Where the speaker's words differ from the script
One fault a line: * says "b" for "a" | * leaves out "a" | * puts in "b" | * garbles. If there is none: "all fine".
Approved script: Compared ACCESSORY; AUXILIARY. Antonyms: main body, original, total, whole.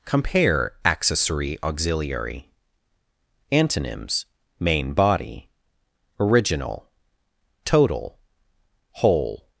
* says "Compare" for "Compared"